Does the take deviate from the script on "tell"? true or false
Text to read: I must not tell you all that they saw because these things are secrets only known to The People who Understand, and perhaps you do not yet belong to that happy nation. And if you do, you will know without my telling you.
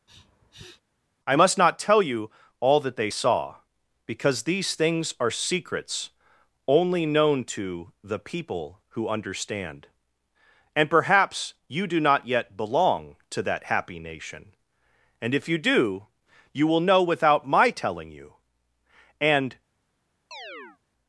false